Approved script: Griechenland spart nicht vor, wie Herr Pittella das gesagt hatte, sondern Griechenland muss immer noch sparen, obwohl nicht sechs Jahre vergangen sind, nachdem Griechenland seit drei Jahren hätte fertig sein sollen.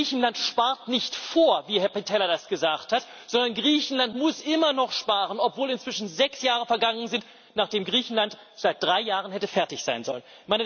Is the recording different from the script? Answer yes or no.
yes